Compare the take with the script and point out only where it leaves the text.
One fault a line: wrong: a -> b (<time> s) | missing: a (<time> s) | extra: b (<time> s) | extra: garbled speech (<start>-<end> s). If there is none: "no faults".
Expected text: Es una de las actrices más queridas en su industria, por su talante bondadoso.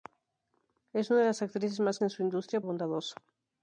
missing: queridas (2.0 s)
missing: por su talante (2.6 s)